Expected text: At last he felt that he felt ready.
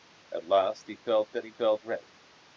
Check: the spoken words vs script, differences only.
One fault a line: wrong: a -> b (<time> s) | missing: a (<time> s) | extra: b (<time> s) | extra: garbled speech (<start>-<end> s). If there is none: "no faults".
no faults